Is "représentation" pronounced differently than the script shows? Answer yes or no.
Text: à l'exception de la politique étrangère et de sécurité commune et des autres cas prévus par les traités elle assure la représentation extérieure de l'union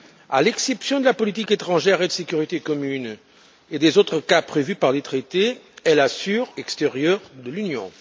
yes